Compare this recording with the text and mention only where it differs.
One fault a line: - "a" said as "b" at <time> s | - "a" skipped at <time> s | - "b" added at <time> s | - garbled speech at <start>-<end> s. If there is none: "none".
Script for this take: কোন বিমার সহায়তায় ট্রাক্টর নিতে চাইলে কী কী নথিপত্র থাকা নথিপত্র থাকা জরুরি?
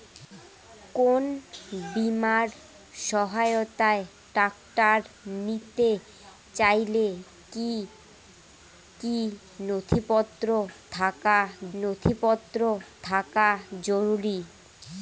none